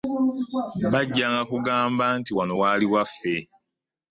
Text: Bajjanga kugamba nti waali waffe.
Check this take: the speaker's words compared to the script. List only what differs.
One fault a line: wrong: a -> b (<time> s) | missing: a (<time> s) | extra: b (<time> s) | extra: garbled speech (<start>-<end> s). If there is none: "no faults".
extra: wano (2.4 s)